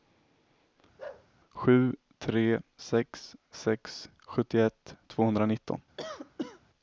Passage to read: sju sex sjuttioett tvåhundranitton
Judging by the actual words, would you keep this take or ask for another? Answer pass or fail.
fail